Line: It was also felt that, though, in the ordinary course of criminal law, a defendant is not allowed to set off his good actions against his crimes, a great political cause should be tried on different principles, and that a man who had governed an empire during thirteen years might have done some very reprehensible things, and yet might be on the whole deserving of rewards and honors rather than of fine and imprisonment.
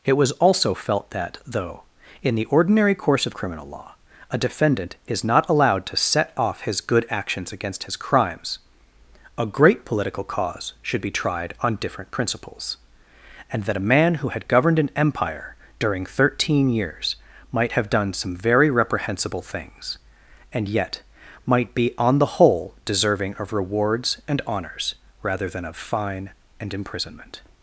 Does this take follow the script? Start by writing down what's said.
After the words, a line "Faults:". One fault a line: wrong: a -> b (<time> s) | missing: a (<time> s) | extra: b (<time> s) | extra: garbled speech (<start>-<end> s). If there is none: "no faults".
It was also felt that, though, in the ordinary course of criminal law, a defendant is not allowed to set off his good actions against his crimes, a great political cause should be tried on different principles, and that a man who had governed an empire during thirteen years might have done some very reprehensible things, and yet might be on the whole deserving of rewards and honors rather than of fine and imprisonment.
Faults:
no faults